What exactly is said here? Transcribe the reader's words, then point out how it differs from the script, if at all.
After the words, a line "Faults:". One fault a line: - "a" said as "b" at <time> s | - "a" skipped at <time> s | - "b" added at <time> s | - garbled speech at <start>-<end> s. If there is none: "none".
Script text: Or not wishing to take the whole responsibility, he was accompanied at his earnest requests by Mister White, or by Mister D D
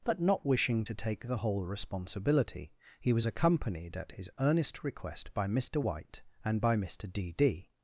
But not wishing to take the whole responsibility, he was accompanied at his earnest request by Mister White, and by Mister D D
Faults:
- "Or" said as "But" at 0.0 s
- "requests" said as "request" at 4.8 s
- "or" said as "and" at 6.4 s